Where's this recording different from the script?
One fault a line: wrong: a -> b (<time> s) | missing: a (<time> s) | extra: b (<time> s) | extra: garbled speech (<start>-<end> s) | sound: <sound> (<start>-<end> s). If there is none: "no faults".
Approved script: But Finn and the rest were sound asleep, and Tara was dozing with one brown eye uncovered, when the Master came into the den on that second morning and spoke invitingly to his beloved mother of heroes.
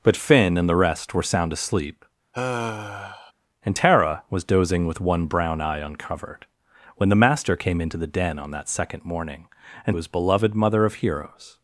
sound: sigh (2.3-3.3 s)
missing: spoke invitingly to (10.0 s)